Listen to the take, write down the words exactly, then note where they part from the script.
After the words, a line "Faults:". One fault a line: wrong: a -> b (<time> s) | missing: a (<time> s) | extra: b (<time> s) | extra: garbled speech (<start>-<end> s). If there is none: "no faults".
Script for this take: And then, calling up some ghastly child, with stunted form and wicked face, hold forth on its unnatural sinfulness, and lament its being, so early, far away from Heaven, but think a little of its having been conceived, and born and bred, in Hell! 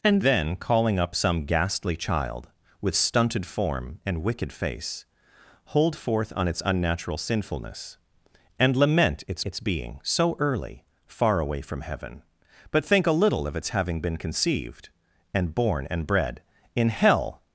And then, calling up some ghastly child, with stunted form and wicked face, hold forth on its unnatural sinfulness, and lament its its being, so early, far away from Heaven, but think a little of its having been conceived, and born and bred, in Hell!
Faults:
extra: its (9.4 s)